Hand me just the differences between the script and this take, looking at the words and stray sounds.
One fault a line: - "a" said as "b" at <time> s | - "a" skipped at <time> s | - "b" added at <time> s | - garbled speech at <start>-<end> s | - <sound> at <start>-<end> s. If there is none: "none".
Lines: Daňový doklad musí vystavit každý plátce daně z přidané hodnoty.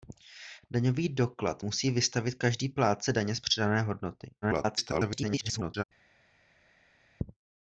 - garbled speech at 4.4-5.8 s